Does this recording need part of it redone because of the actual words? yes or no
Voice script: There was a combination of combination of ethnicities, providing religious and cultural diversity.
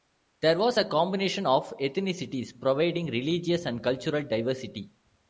yes